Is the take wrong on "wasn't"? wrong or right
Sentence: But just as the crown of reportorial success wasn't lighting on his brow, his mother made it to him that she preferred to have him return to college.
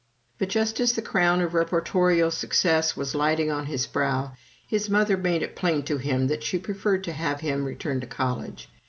wrong